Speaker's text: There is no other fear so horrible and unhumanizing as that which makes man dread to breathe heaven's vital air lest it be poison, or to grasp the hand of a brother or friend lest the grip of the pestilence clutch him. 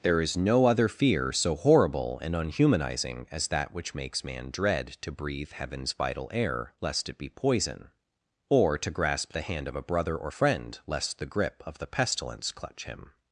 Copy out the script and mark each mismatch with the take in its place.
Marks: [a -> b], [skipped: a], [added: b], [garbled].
There is no other fear so horrible and unhumanizing as that which makes man dread to breathe heaven's vital air lest it be poison, or to grasp the hand of a brother or friend lest the grip of the pestilence clutch him.